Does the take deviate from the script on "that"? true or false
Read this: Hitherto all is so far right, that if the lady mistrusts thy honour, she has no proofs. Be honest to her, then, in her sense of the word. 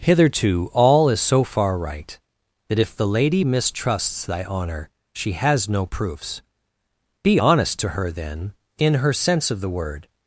false